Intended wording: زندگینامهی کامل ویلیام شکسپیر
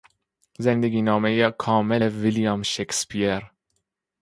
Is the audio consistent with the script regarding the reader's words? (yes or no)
yes